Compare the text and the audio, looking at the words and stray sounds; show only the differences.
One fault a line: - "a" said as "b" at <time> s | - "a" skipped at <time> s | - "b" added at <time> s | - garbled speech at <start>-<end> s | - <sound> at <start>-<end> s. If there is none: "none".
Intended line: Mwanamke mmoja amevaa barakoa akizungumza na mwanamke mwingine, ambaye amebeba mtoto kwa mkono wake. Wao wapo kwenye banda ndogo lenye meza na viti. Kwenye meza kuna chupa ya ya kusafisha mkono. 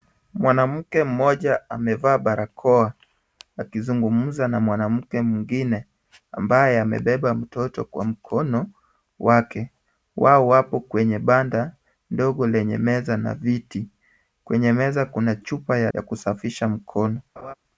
- laugh at 17.4-17.5 s